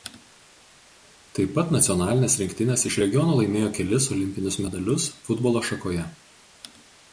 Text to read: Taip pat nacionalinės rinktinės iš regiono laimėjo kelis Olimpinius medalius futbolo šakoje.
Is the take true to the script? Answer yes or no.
yes